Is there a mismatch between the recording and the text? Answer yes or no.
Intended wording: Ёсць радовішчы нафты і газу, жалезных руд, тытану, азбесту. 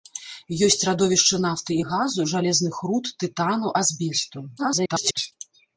yes